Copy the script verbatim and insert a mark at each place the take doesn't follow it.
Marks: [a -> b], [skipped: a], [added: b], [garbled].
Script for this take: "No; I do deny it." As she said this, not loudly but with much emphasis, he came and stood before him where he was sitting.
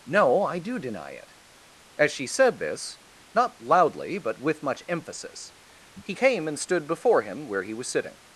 "No; I do deny it." As she said this, not loudly but with much emphasis, he came and stood before him where he was sitting.